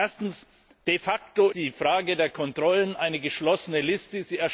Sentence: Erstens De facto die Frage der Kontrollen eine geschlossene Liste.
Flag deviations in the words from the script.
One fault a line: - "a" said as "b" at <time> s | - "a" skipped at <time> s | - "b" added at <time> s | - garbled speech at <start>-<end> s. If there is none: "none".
none